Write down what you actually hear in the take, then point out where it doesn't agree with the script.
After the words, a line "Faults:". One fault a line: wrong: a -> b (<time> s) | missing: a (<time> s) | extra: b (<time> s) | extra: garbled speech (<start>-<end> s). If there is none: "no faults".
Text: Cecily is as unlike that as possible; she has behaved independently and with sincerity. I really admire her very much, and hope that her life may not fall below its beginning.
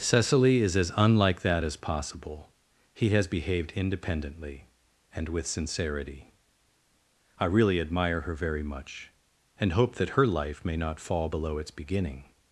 Cecily is as unlike that as possible; he has behaved independently and with sincerity. I really admire her very much, and hope that her life may not fall below its beginning.
Faults:
wrong: she -> he (2.9 s)